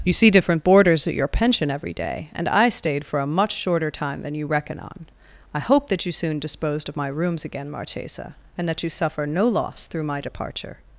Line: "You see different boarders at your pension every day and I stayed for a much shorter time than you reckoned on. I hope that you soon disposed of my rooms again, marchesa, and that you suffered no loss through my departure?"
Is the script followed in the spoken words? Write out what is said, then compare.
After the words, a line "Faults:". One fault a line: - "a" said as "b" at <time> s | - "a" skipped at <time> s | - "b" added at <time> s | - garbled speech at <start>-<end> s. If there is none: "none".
"You see different boarders at your pension every day and I stayed for a much shorter time than you reckon on. I hope that you soon disposed of my rooms again, marchesa, and that you suffer no loss through my departure?"
Faults:
- "reckoned" said as "reckon" at 4.5 s
- "suffered" said as "suffer" at 8.9 s